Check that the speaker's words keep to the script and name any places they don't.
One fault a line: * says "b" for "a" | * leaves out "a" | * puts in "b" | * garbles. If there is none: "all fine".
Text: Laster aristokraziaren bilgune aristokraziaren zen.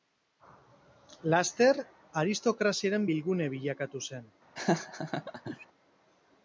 * says "bilakatu" for "aristokraziaren"